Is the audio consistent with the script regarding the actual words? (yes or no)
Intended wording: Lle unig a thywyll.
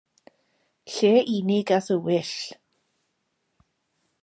yes